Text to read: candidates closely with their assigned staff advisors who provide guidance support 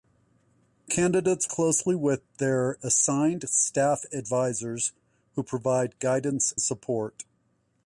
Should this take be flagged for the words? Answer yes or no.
no